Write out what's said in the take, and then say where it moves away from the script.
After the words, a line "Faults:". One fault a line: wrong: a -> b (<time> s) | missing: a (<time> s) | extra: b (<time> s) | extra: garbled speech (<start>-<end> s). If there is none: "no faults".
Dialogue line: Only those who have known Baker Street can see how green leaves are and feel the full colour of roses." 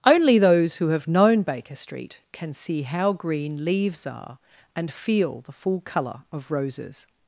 Only those who have known Baker Street can see how green leaves are and feel the full colour of roses."
Faults:
no faults